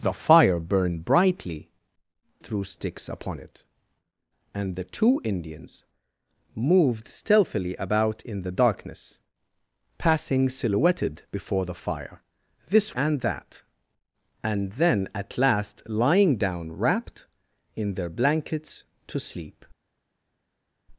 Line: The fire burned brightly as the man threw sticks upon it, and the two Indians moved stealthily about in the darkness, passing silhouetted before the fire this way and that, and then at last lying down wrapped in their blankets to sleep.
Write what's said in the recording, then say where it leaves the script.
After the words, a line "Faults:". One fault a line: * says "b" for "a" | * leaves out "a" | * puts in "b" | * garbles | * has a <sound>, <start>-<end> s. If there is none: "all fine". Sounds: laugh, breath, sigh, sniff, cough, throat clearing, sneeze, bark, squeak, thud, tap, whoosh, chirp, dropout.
The fire burned brightly threw sticks upon it, and the two Indians moved stealthily about in the darkness, passing silhouetted before the fire this and that, and then at last lying down wrapped in their blankets to sleep.
Faults:
* leaves out "as the man"
* leaves out "way"